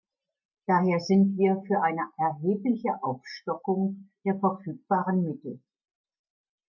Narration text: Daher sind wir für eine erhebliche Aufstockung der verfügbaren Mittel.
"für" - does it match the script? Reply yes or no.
yes